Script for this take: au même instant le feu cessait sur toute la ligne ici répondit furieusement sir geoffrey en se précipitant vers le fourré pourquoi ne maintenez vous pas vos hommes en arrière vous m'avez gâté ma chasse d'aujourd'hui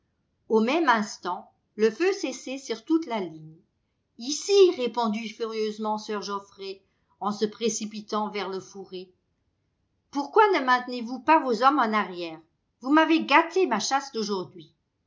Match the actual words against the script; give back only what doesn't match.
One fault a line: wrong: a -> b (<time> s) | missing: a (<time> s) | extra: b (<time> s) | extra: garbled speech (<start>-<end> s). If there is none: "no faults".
no faults